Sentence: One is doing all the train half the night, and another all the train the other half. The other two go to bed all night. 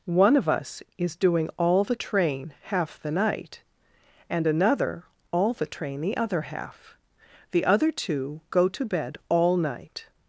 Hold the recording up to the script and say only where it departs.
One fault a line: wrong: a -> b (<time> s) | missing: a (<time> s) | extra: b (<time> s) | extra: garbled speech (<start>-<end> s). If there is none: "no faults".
extra: of us (0.3 s)